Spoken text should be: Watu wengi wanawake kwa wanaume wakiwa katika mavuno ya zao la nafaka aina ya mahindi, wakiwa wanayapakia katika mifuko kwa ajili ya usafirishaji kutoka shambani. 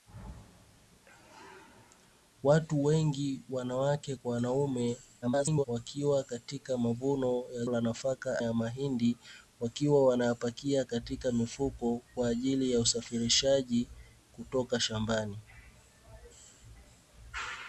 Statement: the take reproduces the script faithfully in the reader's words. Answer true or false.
false